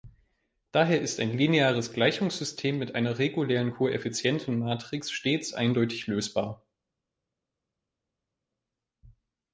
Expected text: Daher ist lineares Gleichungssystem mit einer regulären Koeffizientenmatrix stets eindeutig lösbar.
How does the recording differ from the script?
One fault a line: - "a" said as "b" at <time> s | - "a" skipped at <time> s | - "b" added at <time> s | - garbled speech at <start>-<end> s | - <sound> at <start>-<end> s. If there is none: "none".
- "ein" added at 1.2 s